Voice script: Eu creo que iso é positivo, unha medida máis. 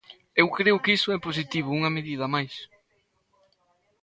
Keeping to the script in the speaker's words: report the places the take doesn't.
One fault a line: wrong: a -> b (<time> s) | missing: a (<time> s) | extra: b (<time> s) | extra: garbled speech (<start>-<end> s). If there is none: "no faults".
no faults